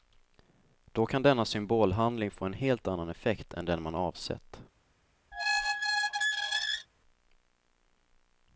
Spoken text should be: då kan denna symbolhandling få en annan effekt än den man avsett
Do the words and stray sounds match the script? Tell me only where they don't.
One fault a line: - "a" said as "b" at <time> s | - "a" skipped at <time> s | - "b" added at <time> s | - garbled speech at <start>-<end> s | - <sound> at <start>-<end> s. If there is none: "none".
- "helt" added at 2.5 s
- squeak at 5.3-6.9 s